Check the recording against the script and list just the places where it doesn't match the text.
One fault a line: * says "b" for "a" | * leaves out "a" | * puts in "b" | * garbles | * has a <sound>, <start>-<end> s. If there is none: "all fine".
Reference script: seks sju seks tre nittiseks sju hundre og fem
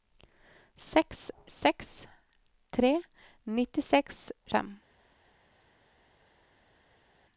* leaves out "sju"
* leaves out "sju hundre og"